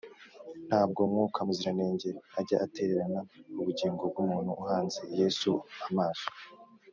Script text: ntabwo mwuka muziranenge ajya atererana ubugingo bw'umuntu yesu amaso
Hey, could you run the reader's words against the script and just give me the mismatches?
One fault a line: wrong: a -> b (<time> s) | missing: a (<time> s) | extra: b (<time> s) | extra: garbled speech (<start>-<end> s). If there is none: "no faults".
extra: uhanze (4.6 s)